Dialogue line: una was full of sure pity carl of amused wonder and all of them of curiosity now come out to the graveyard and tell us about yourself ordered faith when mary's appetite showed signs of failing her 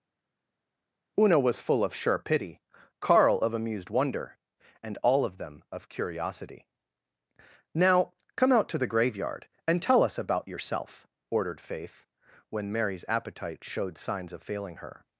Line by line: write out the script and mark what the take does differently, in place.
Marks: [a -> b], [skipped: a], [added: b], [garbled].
una was full of sure pity carl of amused wonder and all of them of curiosity now come out to the graveyard and tell us about yourself ordered faith when mary's appetite showed signs of failing her